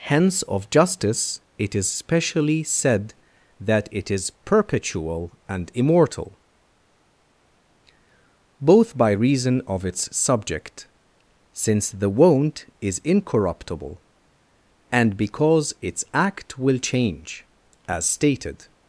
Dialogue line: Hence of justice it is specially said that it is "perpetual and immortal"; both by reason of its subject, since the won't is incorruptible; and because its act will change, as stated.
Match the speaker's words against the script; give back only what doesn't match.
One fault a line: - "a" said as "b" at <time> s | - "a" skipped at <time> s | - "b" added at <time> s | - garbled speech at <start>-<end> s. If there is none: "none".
none